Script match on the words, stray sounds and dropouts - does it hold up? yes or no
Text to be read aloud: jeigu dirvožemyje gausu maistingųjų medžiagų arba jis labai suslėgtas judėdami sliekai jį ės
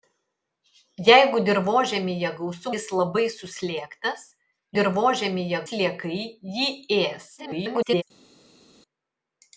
no